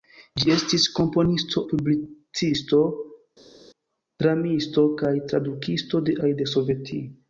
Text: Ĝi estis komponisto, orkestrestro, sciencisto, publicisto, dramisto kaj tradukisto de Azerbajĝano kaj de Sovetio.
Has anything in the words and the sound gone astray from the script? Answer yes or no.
yes